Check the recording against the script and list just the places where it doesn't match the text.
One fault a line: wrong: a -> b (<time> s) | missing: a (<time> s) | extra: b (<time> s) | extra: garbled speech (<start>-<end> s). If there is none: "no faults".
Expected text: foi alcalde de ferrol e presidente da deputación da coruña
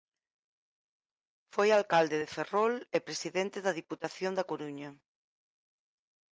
no faults